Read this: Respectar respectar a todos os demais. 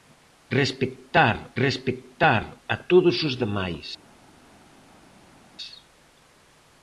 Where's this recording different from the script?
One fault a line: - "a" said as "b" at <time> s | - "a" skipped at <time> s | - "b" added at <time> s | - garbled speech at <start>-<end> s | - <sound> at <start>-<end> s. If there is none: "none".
none